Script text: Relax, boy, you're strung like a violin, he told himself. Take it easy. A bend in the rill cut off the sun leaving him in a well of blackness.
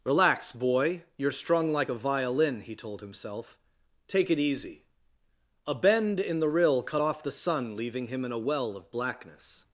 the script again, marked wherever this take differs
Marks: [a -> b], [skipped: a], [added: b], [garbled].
Relax, boy, you're strung like a violin, he told himself. Take it easy. A bend in the rill cut off the sun leaving him in a well of blackness.